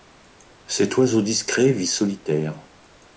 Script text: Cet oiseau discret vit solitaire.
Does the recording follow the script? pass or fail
pass